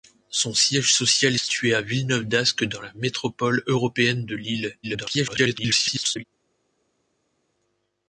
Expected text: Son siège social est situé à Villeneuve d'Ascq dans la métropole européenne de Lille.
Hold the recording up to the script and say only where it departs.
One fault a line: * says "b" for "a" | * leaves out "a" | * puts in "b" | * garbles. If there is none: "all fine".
* leaves out "est"
* garbles